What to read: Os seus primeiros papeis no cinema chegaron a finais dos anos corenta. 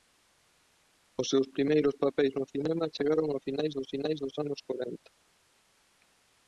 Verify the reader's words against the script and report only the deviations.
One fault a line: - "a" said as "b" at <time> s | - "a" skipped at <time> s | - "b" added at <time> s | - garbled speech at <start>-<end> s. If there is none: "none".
- "finais dos" added at 3.9 s